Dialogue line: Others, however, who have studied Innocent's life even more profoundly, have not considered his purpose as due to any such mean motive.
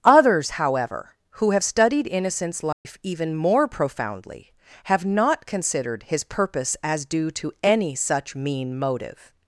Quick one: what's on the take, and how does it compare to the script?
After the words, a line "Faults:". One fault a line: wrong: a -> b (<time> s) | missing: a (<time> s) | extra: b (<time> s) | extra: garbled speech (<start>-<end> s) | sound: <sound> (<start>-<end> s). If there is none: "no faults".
Others, however, who have studied Innocent's life even more profoundly, have not considered his purpose as due to any such mean motive.
Faults:
sound: dropout (2.7-2.9 s)